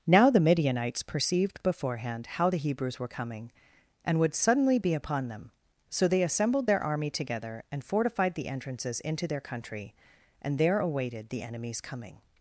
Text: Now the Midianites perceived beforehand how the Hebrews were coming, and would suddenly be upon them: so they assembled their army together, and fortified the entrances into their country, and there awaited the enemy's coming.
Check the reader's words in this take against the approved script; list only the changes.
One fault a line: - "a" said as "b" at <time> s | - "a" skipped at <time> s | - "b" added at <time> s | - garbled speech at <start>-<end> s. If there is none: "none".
none